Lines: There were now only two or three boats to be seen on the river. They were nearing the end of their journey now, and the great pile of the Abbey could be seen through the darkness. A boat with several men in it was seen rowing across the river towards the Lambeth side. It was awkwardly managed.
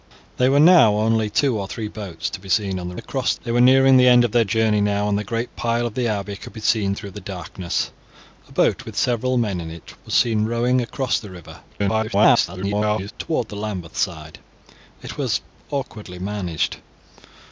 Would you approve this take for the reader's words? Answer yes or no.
no